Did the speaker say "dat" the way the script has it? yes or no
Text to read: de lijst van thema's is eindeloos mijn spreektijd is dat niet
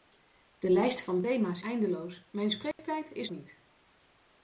no